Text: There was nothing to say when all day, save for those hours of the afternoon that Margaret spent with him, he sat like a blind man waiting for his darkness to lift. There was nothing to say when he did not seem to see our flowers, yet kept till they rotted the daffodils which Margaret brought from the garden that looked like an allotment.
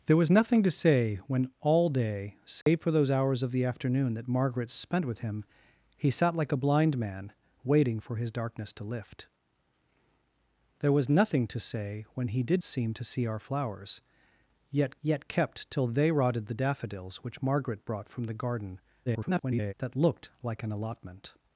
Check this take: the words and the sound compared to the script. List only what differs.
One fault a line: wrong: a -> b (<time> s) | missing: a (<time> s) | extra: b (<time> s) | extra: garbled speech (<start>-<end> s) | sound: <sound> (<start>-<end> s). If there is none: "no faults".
sound: dropout (2.6-2.7 s)
missing: not (12.6 s)
extra: yet (15.0 s)
extra: garbled speech (19.1-19.7 s)